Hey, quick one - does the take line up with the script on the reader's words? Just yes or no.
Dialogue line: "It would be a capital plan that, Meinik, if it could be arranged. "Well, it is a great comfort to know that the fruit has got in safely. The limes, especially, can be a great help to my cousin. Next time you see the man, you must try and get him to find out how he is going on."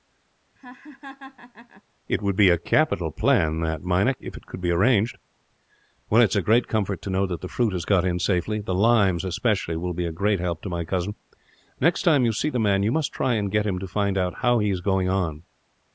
no